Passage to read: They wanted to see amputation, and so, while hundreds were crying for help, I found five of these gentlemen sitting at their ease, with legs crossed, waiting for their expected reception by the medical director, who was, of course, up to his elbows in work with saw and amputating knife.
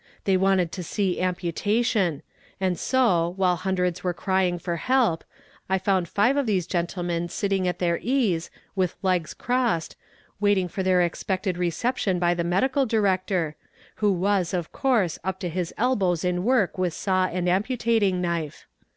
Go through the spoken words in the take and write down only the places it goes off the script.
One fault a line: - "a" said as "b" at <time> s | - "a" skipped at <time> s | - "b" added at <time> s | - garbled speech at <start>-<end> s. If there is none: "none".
none